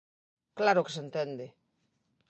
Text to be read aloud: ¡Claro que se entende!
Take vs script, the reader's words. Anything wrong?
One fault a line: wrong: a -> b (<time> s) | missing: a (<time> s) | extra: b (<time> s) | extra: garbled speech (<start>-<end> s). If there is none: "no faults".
no faults